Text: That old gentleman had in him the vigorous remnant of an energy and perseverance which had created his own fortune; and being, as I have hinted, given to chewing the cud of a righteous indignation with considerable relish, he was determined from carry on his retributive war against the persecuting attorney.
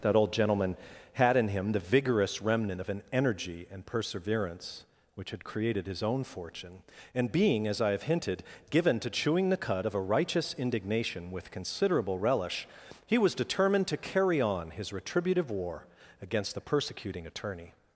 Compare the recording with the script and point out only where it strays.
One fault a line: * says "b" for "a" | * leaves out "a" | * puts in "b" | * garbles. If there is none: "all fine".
* says "to" for "from"